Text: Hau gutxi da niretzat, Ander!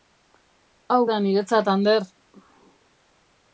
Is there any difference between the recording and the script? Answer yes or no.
yes